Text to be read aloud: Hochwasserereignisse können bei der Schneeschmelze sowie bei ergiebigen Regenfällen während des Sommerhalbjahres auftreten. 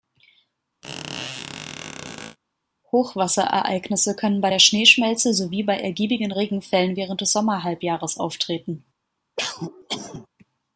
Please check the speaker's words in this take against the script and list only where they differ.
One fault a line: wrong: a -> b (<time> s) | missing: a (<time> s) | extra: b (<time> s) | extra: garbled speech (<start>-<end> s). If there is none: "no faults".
no faults